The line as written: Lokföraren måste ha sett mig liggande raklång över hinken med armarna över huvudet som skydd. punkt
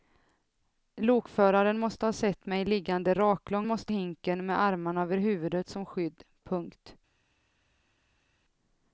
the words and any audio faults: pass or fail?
fail